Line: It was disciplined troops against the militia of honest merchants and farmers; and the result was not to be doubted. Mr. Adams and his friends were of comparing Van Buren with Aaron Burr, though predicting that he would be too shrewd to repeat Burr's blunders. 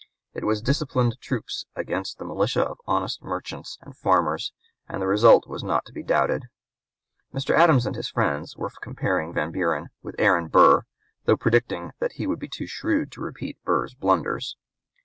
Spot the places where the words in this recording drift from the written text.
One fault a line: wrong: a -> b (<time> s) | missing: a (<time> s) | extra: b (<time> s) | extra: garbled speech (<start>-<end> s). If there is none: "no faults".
no faults